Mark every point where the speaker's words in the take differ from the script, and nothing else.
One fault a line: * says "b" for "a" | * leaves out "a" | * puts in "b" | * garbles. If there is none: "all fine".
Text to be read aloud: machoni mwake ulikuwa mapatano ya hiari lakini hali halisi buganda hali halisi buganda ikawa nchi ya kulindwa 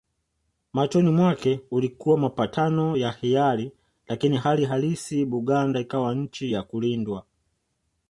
* leaves out "hali halisi buganda"